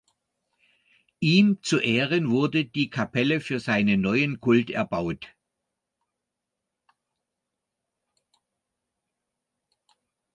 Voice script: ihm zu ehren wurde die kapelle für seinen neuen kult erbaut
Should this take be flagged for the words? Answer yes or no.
no